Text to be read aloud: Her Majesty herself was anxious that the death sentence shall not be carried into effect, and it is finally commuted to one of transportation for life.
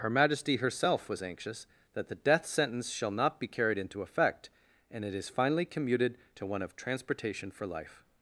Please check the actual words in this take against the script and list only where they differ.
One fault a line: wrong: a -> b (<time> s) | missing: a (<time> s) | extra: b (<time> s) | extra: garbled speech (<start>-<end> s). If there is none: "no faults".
no faults